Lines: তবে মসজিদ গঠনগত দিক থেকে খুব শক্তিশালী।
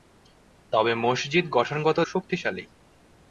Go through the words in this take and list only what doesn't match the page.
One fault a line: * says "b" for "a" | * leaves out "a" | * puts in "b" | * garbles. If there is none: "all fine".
* leaves out "দিক থেকে খুব"